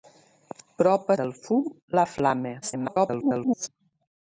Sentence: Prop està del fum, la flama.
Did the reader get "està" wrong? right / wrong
wrong